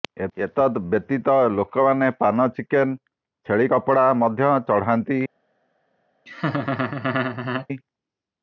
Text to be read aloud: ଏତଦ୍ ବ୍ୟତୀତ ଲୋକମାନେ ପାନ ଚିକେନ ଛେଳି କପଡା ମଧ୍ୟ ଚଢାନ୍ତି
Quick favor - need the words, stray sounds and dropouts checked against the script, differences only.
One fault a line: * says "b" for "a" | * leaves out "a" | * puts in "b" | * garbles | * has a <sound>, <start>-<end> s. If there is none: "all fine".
* has a laugh, 6.3-7.7 s